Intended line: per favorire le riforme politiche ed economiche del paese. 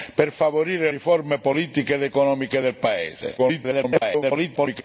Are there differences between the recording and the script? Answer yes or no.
yes